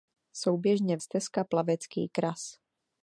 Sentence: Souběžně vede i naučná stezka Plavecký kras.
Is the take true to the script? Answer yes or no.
no